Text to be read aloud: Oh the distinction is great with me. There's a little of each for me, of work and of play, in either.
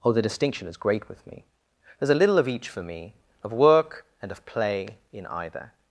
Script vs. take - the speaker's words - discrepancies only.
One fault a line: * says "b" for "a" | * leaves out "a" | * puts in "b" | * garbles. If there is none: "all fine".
all fine